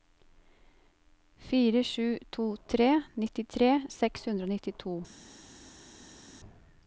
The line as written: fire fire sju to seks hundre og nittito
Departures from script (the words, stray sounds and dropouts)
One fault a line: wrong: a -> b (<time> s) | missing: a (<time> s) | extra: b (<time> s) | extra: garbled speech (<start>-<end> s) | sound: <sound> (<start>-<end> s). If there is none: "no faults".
missing: fire (1.8 s)
extra: tre nittitre (2.7 s)